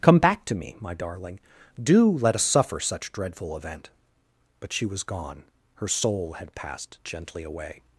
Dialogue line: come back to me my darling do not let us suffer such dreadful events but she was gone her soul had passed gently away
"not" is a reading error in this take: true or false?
true